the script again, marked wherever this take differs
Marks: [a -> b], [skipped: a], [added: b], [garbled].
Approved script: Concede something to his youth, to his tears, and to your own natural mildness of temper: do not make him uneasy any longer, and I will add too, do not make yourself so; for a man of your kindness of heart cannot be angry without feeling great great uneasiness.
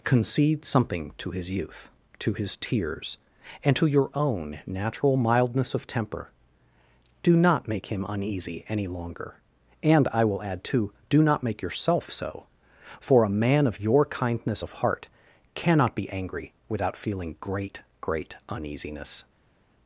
Concede something to his youth, to his tears, and to your own natural mildness of temper: do not make him uneasy any longer, and I will add too, do not make yourself so; for a man of your kindness of heart cannot be angry without feeling great great uneasiness.